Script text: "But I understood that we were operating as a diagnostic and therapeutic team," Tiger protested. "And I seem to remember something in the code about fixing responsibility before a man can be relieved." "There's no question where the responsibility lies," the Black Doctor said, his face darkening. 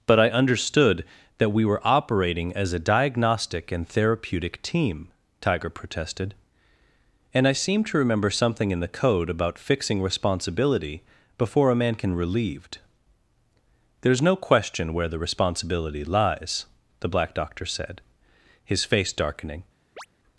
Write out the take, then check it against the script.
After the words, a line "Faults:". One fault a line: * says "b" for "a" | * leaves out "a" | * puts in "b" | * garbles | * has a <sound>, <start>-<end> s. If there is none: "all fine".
"But I understood that we were operating as a diagnostic and therapeutic team," Tiger protested. "And I seem to remember something in the code about fixing responsibility before a man can relieved." "There's no question where the responsibility lies," the Black Doctor said, his face darkening.
Faults:
* leaves out "be"
* has a chirp, 20.0-20.1 s